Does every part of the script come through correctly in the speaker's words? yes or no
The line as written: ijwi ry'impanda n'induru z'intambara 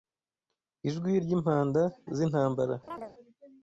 no